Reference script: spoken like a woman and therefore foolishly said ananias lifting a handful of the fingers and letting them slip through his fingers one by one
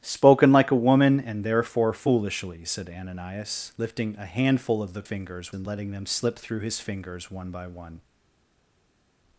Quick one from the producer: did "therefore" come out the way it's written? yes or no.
yes